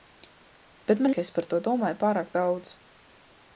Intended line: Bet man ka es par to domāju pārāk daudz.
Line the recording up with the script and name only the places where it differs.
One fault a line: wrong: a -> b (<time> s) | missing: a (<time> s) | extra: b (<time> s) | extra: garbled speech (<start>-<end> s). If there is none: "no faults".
no faults